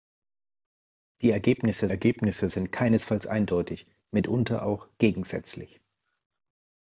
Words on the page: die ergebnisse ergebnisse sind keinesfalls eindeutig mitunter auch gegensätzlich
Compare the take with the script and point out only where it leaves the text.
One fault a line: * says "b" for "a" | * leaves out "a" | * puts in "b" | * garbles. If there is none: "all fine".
all fine